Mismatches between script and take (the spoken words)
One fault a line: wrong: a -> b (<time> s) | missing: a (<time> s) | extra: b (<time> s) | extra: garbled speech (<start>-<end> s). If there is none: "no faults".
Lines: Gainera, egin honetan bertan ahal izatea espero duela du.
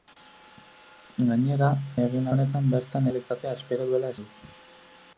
no faults